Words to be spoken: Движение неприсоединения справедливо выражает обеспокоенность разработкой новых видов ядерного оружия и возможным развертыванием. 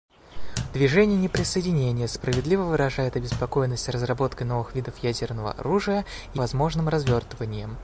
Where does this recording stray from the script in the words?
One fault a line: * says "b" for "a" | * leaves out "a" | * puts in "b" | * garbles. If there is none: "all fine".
all fine